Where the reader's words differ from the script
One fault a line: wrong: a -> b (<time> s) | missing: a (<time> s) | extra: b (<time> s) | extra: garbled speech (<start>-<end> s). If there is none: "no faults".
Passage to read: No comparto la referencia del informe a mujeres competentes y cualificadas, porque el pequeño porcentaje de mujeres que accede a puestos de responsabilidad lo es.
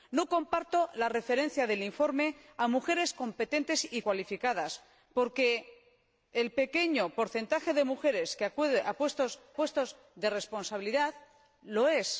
extra: puestos (9.5 s)